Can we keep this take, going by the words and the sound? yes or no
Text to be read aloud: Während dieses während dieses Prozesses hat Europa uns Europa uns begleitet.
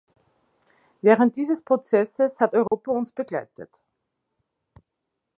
no